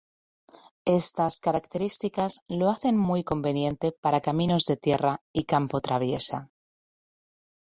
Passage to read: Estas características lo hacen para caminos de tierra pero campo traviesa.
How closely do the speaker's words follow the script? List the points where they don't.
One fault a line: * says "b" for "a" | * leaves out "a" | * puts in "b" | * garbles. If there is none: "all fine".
* puts in "muy conveniente"
* says "y" for "pero"